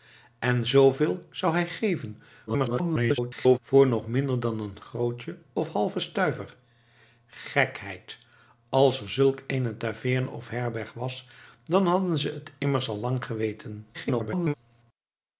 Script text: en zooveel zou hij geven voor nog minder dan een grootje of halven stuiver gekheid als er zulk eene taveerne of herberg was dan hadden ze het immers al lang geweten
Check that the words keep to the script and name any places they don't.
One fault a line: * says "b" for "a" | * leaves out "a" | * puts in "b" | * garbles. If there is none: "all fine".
* garbles
* garbles